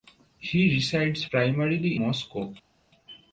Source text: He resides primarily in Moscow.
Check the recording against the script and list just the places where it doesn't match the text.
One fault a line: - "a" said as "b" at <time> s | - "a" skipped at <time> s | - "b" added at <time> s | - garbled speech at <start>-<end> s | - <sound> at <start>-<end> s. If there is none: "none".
- "in" skipped at 2.0 s